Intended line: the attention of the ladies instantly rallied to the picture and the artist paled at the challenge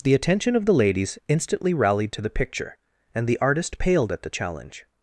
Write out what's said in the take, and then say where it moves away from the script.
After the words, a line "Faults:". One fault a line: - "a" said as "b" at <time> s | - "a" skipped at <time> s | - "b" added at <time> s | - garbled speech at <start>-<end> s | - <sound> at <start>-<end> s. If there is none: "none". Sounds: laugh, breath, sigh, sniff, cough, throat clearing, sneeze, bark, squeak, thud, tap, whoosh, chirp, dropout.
the attention of the ladies instantly rallied to the picture and the artist paled at the challenge
Faults:
none